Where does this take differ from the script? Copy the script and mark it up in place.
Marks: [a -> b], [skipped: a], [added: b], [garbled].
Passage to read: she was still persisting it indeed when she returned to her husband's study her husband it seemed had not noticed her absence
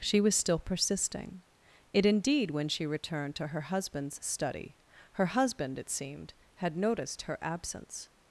she was still persisting it indeed when she returned to her husband's study her husband it seemed had [skipped: not] noticed her absence